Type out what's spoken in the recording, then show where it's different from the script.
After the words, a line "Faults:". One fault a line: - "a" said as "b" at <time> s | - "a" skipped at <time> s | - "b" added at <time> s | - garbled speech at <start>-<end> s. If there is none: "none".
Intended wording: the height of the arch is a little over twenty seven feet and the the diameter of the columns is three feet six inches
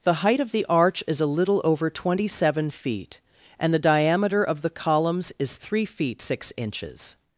the height of the arch is a little over twenty seven feet and the diameter of the columns is three feet six inches
Faults:
- "the" skipped at 3.9 s